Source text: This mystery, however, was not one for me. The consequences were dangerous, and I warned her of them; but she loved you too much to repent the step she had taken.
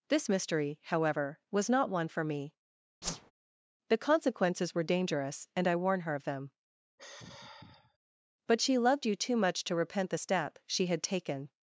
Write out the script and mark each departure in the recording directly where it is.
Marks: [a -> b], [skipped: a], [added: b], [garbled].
This mystery, however, was not one for me. The consequences were dangerous, and I [warned -> warn] her of them; but she loved you too much to repent the step she had taken.